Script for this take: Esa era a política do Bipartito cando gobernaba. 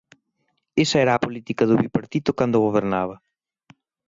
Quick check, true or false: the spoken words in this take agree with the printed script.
true